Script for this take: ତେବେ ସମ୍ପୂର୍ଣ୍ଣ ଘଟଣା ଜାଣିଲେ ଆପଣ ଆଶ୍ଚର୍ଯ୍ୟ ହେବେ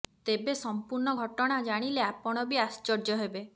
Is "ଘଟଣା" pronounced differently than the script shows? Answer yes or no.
no